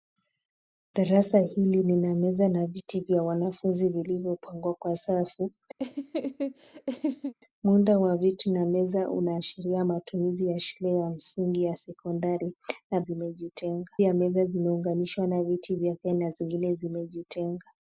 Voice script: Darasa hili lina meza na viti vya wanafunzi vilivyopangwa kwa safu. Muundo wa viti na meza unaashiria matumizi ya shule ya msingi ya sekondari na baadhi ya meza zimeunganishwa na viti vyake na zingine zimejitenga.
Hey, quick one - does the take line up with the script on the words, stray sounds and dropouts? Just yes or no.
no